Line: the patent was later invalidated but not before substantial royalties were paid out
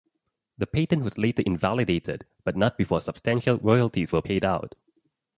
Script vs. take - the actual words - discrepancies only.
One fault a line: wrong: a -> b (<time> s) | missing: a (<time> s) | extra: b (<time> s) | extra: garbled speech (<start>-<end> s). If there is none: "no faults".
no faults